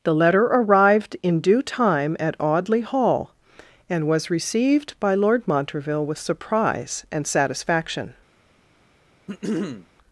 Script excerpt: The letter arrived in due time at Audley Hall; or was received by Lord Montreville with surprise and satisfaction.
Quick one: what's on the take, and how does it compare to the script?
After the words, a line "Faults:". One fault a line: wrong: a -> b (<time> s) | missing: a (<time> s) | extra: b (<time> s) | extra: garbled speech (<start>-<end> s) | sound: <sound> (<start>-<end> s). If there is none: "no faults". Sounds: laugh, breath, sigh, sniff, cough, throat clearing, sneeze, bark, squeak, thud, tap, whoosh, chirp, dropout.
The letter arrived in due time at Audley Hall; and was received by Lord Montreville with surprise and satisfaction.
Faults:
wrong: or -> and (3.9 s)
sound: throat clearing (9.3-9.9 s)